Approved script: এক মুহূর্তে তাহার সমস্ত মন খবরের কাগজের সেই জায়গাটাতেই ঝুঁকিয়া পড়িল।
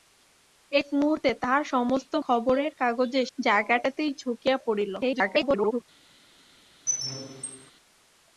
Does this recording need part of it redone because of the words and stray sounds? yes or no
yes